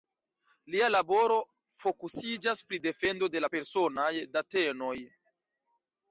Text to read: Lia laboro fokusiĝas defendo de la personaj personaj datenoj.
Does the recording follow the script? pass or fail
fail